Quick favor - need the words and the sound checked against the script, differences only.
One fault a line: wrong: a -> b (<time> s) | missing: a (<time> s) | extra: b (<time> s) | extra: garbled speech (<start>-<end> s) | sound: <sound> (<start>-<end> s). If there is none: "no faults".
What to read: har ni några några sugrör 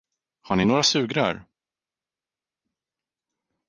missing: några (0.8 s)